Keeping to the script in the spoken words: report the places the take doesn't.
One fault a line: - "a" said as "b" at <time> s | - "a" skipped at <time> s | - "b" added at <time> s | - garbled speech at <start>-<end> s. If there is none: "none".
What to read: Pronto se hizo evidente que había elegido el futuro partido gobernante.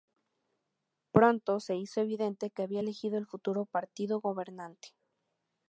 none